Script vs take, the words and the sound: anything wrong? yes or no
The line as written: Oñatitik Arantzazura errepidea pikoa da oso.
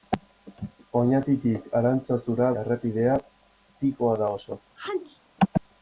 yes